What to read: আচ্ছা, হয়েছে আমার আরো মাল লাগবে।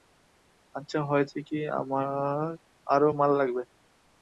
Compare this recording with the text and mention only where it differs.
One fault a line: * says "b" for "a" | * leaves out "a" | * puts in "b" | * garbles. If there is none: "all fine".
* puts in "কী"